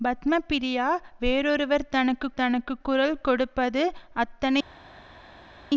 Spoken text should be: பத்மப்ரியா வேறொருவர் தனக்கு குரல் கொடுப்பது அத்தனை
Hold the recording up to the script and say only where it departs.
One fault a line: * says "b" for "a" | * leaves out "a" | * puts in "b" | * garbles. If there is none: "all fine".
* puts in "தனக்கு"